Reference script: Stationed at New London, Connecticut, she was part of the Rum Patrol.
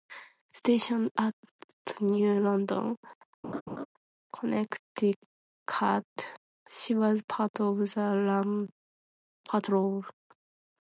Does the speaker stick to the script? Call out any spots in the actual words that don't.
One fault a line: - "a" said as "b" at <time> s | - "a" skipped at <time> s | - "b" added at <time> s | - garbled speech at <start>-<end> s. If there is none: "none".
none